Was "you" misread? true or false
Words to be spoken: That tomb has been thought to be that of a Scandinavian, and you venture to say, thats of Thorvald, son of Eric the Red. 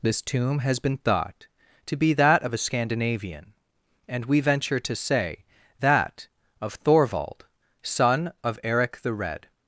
true